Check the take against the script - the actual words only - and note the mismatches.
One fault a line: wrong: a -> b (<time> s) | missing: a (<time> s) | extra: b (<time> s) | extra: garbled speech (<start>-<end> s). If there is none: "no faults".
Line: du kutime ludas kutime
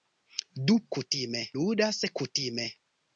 no faults